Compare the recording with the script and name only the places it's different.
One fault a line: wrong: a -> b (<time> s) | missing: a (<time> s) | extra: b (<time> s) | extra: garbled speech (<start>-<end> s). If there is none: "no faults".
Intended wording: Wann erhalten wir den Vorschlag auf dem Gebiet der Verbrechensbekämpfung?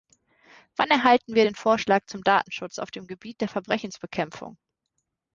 extra: zum Datenschutz (2.1 s)